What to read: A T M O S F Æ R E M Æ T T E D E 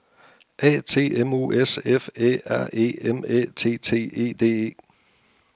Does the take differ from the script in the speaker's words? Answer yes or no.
no